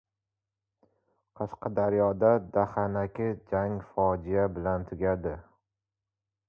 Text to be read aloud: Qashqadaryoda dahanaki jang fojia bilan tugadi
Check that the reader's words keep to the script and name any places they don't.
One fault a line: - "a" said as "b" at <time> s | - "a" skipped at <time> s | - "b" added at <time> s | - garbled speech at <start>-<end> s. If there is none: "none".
none